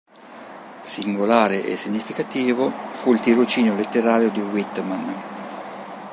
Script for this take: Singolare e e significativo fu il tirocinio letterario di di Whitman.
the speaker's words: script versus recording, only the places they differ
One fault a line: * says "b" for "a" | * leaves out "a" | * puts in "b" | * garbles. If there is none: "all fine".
* leaves out "e"
* leaves out "di"